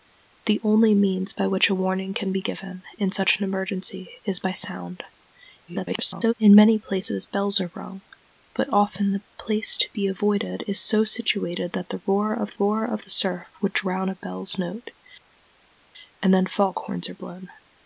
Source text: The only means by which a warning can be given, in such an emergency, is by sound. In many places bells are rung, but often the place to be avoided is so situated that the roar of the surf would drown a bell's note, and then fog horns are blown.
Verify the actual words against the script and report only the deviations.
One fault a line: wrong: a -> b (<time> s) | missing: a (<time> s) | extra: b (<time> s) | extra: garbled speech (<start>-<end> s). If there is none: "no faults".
extra: garbled speech (5.7-6.3 s)
extra: roar of (12.6 s)